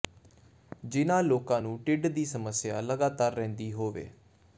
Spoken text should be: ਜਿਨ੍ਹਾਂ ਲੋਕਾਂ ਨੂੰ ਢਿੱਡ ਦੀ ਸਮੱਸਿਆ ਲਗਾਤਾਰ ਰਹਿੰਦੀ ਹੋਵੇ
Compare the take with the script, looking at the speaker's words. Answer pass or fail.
pass